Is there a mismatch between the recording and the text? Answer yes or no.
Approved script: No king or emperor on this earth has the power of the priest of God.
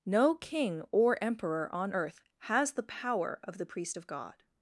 yes